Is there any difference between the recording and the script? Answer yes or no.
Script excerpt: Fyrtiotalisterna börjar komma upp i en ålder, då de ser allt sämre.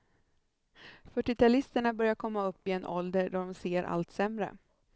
no